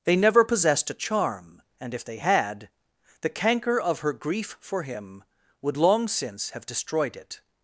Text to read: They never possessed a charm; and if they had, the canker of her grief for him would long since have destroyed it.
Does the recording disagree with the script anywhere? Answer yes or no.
no